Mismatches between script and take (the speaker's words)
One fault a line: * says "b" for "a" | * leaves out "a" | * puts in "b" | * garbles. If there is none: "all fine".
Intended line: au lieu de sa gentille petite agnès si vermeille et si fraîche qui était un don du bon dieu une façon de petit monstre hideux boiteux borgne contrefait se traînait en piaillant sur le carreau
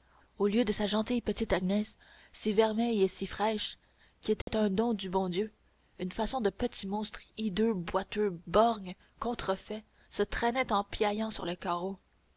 all fine